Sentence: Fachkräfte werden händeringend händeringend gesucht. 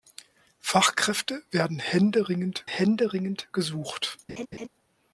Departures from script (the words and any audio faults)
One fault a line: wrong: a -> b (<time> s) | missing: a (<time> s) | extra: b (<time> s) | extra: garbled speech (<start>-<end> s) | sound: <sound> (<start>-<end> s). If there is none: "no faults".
sound: laugh (4.3-4.7 s)